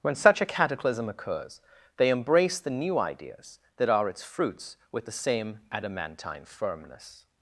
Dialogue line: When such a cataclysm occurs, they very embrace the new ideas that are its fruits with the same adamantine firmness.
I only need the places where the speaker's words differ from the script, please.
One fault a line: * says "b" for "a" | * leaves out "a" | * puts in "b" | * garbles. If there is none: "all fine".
* leaves out "very"